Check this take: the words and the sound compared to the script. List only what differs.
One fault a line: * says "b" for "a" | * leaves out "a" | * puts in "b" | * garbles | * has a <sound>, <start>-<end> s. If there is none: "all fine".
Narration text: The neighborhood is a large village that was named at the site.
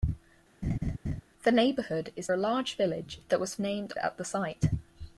* has a laugh, 0.6-1.2 s